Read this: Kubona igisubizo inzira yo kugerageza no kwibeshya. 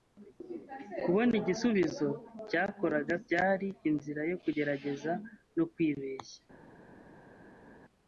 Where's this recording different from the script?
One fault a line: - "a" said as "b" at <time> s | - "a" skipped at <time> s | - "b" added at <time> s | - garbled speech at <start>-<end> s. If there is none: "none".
- "cyakoraga byari" added at 2.5 s